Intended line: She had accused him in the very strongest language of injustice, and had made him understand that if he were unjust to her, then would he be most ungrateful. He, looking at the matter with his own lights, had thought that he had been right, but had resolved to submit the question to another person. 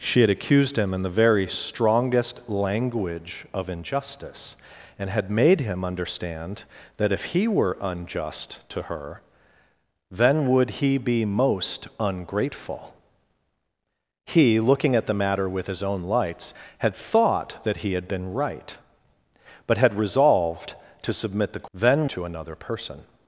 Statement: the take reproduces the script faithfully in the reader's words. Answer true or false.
false